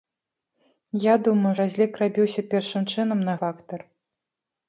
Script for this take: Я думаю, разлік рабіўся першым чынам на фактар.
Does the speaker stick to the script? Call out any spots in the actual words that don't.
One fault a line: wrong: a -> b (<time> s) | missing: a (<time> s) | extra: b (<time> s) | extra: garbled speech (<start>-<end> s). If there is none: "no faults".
no faults